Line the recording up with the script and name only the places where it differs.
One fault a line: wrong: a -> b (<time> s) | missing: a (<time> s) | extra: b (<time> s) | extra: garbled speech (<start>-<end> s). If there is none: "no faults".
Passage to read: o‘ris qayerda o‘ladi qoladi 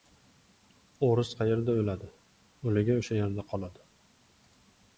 extra: o‘ligi o‘sha yerda (2.7 s)